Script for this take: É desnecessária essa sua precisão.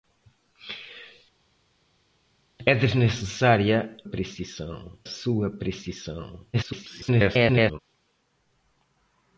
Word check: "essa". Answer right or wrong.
wrong